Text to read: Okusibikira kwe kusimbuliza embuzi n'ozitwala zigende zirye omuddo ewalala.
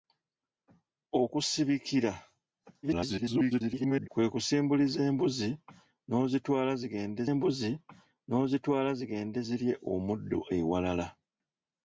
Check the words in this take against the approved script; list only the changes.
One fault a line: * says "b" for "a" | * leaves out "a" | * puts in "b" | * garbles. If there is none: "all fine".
* garbles
* puts in "embuzi n'ozitwala zigende"